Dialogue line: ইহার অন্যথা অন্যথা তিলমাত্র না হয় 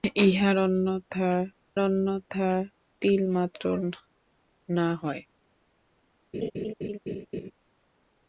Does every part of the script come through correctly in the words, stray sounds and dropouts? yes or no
no